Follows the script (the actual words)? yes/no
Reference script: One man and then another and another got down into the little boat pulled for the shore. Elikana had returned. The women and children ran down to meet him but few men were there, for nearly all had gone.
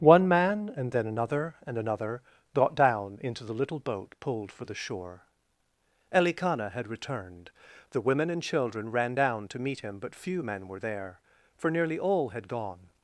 yes